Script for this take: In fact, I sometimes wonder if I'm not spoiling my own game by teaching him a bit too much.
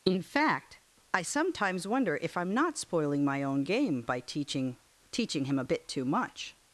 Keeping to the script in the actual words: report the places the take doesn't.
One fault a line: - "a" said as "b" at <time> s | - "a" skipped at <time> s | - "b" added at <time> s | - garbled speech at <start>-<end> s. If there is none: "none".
- "teaching" added at 5.1 s